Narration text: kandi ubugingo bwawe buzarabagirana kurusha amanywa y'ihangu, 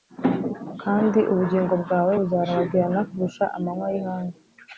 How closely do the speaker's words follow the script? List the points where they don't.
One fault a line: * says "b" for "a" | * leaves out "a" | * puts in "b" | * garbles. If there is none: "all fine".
all fine